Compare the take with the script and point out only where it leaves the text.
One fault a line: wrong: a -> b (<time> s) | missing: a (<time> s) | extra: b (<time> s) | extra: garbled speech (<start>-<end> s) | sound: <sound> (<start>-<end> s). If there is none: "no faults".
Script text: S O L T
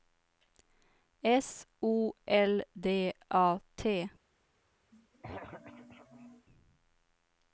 extra: D A (2.7 s)
sound: throat clearing (4.9-6.5 s)